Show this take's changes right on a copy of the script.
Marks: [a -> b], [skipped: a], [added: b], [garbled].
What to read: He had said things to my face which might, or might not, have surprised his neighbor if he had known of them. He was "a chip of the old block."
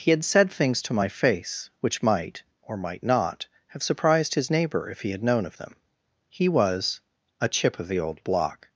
He had said things to my face which might, or might not, have surprised his neighbor if he had known of them. He was "a chip of the old block."